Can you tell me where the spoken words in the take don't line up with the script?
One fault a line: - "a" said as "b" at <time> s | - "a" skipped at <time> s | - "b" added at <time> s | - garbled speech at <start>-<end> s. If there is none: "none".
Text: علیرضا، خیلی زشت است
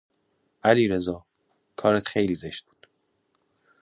- "کارت" added at 1.8 s
- "است" said as "بود" at 2.7 s